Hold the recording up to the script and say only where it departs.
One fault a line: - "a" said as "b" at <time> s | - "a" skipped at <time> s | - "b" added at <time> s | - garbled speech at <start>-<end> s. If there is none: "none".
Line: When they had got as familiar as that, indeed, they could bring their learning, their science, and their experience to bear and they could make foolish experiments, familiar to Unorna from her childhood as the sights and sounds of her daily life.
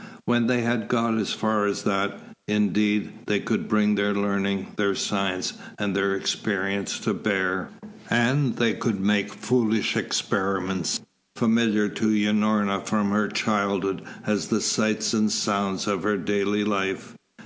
- "familiar" said as "far" at 1.3 s